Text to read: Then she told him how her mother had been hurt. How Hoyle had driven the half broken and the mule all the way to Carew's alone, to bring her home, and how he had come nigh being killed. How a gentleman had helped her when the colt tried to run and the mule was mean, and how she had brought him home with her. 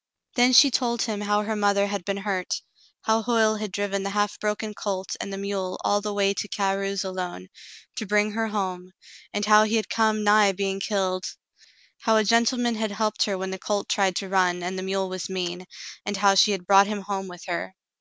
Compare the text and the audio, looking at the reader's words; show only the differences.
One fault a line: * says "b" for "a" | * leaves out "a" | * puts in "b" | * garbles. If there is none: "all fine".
* puts in "colt"